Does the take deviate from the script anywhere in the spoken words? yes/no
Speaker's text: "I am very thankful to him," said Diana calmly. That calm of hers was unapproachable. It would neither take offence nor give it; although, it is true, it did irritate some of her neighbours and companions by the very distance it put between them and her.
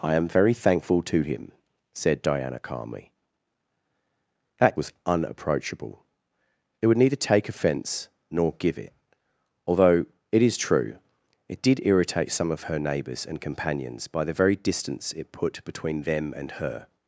yes